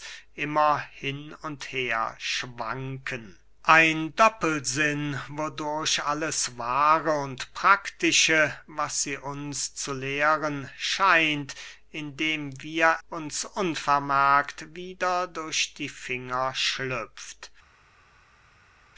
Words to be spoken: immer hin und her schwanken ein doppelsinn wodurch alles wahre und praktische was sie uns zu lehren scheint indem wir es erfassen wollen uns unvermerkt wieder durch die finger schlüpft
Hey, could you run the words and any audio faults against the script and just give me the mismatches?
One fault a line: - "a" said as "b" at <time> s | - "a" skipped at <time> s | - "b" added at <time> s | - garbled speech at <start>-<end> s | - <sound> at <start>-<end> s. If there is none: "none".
- "es erfassen wollen" skipped at 13.0 s